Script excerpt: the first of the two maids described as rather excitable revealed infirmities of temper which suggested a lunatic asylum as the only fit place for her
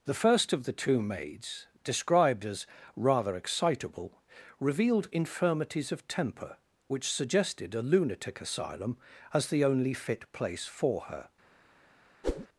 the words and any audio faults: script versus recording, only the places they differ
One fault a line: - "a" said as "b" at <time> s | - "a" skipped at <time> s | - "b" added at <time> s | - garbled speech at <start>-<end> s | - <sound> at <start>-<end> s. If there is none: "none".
- whoosh at 12.2-12.5 s